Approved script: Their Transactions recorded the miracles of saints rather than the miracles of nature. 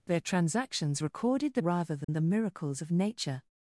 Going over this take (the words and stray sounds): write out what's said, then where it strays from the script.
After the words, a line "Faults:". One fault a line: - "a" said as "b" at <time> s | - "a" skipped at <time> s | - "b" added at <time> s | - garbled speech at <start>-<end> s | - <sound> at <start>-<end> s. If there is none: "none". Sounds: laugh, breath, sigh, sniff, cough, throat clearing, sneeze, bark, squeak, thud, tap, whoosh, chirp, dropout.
Their Transactions recorded the rather than the miracles of nature.
Faults:
- "miracles of saints" skipped at 1.6 s
- dropout at 2.0-2.1 s